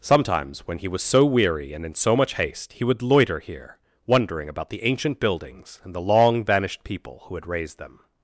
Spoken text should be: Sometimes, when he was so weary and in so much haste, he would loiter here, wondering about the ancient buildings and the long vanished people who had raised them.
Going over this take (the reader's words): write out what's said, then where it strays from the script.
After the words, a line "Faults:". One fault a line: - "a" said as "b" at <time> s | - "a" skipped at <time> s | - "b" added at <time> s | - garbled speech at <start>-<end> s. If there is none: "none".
Sometimes, when he was so weary and in so much haste, he would loiter here, wondering about the ancient buildings and the long vanished people who had raised them.
Faults:
none